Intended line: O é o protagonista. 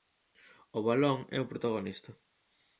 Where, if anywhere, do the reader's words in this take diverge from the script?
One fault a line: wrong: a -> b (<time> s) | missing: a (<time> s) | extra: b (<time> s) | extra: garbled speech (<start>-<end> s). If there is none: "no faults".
extra: balón (0.9 s)